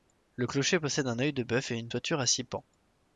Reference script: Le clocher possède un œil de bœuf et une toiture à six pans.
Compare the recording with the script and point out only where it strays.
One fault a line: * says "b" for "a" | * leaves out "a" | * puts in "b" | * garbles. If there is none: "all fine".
all fine